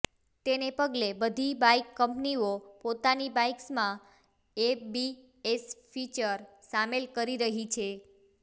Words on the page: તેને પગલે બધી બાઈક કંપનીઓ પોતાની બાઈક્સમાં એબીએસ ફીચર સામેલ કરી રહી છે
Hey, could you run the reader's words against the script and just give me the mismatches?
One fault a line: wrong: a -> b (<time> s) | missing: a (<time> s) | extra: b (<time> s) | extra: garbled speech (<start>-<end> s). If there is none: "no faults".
no faults